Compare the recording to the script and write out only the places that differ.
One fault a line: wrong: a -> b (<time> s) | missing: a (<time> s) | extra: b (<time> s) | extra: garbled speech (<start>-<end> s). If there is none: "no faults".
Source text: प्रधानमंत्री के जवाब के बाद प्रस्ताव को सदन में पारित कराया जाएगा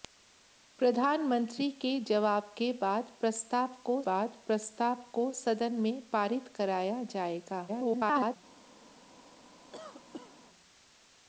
extra: बाद प्रस्ताव को (4.1 s)
extra: garbled speech (7.7-8.4 s)